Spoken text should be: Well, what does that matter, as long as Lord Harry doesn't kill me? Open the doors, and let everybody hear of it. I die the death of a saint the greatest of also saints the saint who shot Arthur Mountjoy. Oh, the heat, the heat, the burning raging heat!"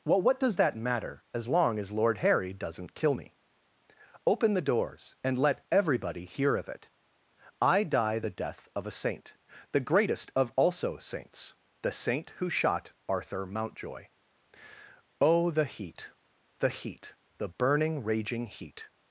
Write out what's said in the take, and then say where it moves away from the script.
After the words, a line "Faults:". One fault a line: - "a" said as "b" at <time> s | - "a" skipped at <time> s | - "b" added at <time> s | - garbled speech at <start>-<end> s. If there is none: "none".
Well, what does that matter, as long as Lord Harry doesn't kill me? Open the doors, and let everybody hear of it. I die the death of a saint the greatest of also saints the saint who shot Arthur Mountjoy. Oh, the heat, the heat, the burning raging heat!"
Faults:
none